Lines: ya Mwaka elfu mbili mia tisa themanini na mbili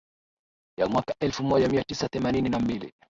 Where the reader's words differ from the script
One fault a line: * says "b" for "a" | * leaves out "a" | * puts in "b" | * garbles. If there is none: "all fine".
* says "moja" for "mbili"